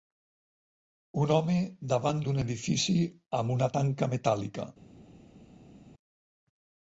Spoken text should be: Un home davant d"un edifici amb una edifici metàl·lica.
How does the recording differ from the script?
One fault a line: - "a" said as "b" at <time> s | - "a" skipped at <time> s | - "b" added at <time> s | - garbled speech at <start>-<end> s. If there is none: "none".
- "edifici" said as "tanca" at 3.8 s